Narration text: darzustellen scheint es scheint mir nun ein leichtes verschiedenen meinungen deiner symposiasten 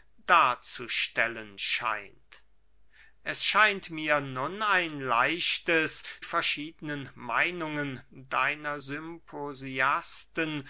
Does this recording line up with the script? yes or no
yes